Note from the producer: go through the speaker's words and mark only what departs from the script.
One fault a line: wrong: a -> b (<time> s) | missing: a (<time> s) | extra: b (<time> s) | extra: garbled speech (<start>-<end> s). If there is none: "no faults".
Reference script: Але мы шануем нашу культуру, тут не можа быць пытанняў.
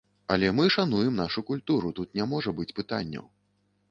no faults